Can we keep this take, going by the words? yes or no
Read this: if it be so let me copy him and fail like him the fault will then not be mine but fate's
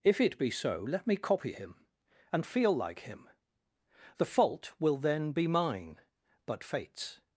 no